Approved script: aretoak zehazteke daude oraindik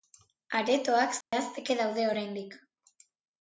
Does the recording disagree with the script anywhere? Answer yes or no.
no